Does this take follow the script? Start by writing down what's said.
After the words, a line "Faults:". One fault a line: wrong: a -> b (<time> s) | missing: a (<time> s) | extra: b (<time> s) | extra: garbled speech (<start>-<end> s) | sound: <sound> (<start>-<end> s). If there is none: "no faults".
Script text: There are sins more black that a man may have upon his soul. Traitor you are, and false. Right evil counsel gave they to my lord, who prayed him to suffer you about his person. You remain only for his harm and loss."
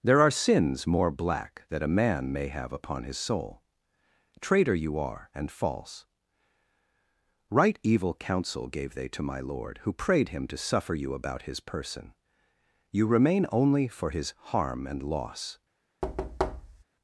There are sins more black that a man may have upon his soul. Traitor you are, and false. Right evil counsel gave they to my lord, who prayed him to suffer you about his person. You remain only for his harm and loss."
Faults:
sound: thud (16.0-16.8 s)